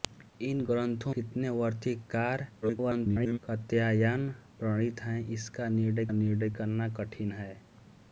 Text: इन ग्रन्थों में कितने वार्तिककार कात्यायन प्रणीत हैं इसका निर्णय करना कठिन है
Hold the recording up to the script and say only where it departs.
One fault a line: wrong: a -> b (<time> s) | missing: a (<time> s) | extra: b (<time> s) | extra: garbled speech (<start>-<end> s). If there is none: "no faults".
missing: में (1.1 s)
extra: garbled speech (2.6-3.4 s)
extra: निर्णय (6.1 s)